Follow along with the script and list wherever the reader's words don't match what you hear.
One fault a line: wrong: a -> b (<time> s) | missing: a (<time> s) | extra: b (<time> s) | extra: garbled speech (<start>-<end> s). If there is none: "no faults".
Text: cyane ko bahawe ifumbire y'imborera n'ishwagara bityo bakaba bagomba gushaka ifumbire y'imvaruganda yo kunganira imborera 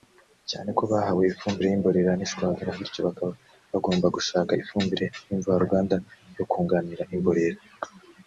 no faults